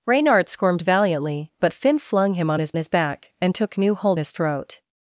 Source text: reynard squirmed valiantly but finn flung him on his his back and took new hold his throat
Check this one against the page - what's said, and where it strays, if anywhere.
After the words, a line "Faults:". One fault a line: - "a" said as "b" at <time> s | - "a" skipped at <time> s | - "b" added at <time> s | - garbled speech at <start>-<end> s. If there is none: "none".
reynard squirmed valiantly but finn flung him on his his back and took new hold his throat
Faults:
none